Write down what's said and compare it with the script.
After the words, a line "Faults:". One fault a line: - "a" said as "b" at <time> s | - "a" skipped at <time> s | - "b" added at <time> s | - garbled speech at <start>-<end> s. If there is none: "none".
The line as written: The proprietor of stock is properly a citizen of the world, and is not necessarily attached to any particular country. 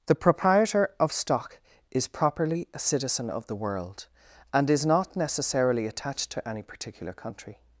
The proprietor of stock is properly a citizen of the world, and is not necessarily attached to any particular country.
Faults:
none